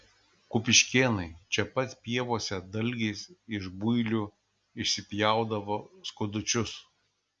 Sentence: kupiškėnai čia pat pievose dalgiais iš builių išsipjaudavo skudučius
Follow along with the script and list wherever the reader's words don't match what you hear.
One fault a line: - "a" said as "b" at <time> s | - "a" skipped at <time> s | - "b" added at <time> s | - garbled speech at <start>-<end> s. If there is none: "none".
none